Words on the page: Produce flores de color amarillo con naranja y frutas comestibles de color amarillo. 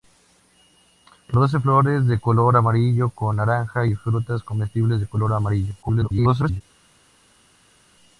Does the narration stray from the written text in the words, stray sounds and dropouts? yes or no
yes